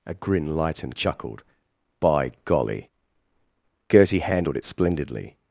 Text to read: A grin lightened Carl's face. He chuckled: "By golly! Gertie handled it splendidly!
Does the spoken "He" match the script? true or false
false